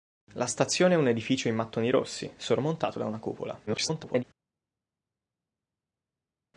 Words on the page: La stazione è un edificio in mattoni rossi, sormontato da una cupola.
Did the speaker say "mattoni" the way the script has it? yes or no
yes